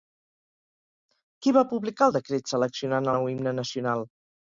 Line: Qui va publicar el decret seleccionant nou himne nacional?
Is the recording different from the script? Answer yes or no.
no